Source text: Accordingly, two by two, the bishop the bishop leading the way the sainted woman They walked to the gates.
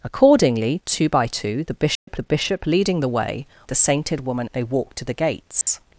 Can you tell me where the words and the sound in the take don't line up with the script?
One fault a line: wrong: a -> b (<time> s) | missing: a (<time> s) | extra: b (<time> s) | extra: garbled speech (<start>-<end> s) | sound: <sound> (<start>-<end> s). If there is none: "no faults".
sound: dropout (1.9-2.1 s)
sound: dropout (5.6-5.7 s)